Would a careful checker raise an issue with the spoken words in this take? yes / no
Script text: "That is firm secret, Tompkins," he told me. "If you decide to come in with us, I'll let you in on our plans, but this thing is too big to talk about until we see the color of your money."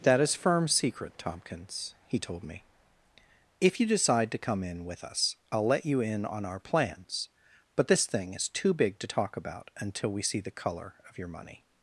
no